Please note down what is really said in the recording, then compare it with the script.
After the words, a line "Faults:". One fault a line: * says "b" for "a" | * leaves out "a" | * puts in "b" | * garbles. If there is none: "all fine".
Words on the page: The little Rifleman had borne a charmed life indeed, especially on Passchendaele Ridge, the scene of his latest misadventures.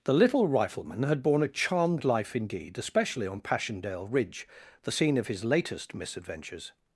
The little Rifleman had borne a charmed life indeed, especially on Passchendaele Ridge, the scene of his latest misadventures.
Faults:
all fine